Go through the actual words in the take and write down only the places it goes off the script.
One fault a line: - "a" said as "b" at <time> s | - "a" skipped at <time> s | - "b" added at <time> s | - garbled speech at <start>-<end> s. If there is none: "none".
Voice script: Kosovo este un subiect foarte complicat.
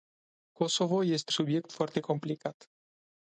- "un" skipped at 1.3 s